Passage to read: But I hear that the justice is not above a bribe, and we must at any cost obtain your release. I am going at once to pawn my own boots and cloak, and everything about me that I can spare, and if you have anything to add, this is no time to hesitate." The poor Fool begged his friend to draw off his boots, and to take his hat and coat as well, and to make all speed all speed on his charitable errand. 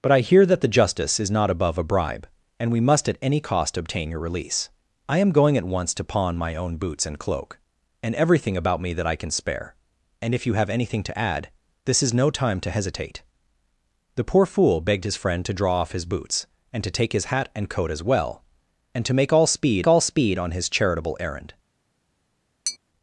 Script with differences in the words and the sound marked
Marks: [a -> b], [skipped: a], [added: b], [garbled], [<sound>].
But I hear that the justice is not above a bribe, and we must at any cost obtain your release. I am going at once to pawn my own boots and cloak, and everything about me that I can spare, and if you have anything to add, this is no time to hesitate." The poor Fool begged his friend to draw off his boots, and to take his hat and coat as well, and to make all speed all speed on his charitable errand. [tap]